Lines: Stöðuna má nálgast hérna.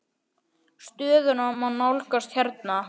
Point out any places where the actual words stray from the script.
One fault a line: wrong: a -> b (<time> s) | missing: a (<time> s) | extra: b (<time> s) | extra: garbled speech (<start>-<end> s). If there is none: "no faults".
no faults